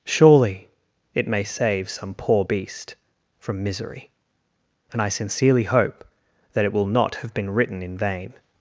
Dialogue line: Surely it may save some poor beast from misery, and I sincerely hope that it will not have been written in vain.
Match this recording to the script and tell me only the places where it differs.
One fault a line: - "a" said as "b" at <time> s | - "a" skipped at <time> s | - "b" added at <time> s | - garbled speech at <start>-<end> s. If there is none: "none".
none